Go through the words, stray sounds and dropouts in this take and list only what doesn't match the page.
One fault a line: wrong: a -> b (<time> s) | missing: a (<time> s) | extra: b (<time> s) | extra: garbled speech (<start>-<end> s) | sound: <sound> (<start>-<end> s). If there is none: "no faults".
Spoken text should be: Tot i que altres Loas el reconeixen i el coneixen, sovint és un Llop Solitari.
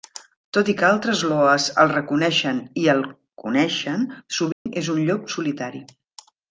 sound: dropout (4.5-4.7 s)